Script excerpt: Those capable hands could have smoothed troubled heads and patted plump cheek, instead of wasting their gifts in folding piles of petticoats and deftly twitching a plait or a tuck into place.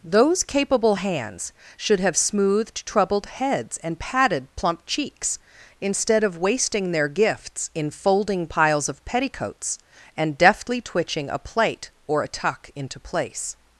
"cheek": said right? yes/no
no